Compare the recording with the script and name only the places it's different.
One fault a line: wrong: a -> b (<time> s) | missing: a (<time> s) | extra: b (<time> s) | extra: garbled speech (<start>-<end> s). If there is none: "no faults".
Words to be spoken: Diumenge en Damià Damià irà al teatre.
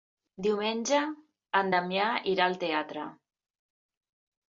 missing: Damià (2.0 s)